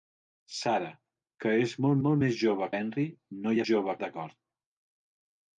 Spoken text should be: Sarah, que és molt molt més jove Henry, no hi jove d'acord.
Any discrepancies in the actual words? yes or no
no